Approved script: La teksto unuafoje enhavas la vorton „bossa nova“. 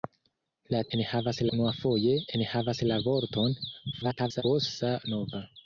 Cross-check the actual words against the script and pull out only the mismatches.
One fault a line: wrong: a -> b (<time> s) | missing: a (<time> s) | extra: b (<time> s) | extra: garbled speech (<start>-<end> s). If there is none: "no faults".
wrong: teksto -> enhavas (1.0 s)
extra: garbled speech (3.9-4.4 s)